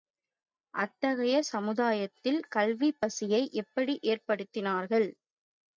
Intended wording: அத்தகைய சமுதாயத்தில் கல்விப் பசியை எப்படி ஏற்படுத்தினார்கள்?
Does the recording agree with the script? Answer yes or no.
yes